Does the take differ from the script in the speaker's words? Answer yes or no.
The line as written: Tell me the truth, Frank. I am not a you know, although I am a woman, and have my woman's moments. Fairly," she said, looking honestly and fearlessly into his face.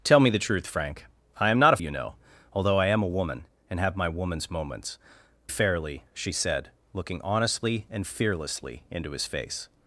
no